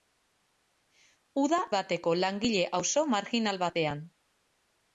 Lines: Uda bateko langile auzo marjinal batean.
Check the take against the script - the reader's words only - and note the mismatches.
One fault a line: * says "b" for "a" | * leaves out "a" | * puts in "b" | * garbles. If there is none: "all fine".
all fine